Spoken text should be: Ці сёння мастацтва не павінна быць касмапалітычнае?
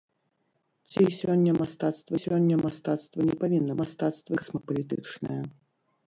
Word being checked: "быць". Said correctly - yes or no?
no